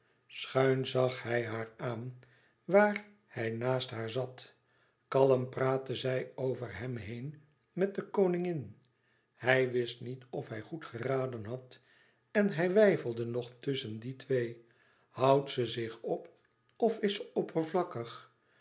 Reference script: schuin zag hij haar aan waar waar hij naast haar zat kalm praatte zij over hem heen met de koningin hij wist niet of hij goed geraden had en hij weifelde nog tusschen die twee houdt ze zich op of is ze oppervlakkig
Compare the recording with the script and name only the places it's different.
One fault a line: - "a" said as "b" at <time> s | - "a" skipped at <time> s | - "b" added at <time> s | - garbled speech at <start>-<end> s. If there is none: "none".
- "waar" skipped at 3.0 s